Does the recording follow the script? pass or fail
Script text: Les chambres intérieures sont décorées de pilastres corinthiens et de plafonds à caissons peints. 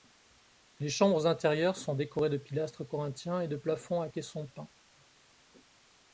pass